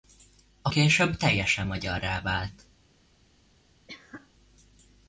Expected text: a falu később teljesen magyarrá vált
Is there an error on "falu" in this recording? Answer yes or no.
yes